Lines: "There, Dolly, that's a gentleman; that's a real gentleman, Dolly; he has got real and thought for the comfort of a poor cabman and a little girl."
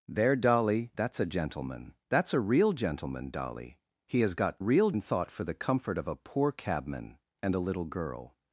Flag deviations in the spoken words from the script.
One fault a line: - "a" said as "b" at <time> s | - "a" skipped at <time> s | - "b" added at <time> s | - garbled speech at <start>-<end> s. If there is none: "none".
none